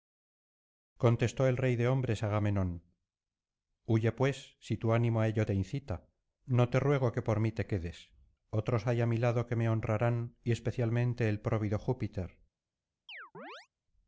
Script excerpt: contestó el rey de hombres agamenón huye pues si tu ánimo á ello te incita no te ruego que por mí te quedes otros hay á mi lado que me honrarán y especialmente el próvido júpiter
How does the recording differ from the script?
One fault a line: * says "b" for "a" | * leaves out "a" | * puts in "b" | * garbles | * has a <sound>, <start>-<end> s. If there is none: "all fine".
* has a chirp, 13.1-13.7 s